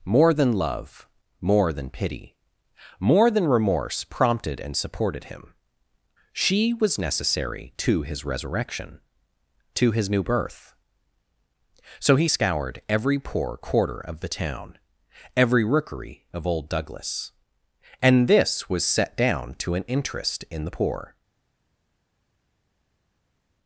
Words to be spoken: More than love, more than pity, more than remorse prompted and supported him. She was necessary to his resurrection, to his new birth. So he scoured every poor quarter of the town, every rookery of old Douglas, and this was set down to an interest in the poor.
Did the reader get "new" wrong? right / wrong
right